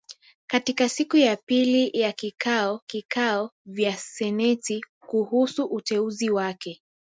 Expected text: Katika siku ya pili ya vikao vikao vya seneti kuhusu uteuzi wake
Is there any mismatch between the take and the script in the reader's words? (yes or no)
no